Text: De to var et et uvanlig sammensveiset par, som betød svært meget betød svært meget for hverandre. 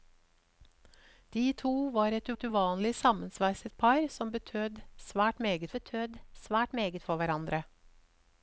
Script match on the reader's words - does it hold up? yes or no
yes